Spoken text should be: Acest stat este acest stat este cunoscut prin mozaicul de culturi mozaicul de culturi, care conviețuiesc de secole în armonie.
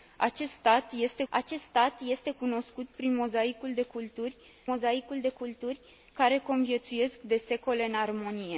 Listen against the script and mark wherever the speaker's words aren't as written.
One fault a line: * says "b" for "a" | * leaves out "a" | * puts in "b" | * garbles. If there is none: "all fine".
all fine